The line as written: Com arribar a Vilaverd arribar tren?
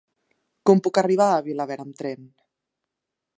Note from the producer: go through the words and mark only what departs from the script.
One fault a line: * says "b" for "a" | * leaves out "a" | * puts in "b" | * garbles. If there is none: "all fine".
* puts in "puc"
* says "amb" for "arribar"